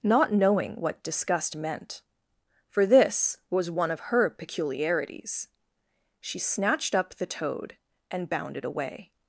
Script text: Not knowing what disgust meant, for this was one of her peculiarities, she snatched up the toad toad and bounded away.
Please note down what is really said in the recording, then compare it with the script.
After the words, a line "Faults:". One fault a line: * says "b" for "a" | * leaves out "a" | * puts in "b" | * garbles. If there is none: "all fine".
Not knowing what disgust meant, for this was one of her peculiarities, she snatched up the toad and bounded away.
Faults:
* leaves out "toad"